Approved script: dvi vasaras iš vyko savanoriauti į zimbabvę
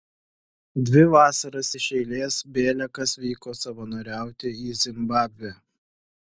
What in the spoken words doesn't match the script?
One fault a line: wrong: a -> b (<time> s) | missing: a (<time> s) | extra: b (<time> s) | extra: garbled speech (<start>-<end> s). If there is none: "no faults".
extra: eilės bėliakas (2.0 s)